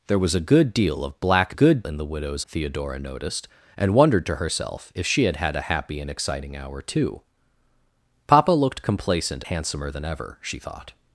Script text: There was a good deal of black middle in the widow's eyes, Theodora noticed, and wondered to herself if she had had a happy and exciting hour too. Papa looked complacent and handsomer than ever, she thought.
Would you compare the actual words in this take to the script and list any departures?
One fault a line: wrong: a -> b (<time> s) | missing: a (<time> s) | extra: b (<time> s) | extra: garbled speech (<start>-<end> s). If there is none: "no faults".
wrong: middle -> good (1.5 s)
missing: eyes (2.4 s)
missing: and (9.4 s)